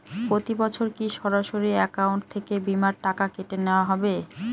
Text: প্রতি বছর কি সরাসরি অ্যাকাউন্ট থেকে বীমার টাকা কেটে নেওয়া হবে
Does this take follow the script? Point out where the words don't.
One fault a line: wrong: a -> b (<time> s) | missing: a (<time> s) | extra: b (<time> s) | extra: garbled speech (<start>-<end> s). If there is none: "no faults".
no faults